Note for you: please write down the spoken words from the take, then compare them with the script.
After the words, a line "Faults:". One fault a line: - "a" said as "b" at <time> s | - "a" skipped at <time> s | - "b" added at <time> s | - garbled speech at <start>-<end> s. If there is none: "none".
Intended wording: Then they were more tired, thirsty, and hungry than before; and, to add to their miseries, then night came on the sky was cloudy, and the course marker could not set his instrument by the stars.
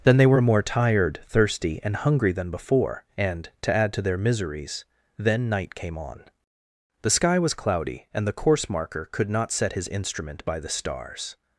Then they were more tired, thirsty, and hungry than before; and, to add to their miseries, then night came on the sky was cloudy, and the course marker could not set his instrument by the stars.
Faults:
none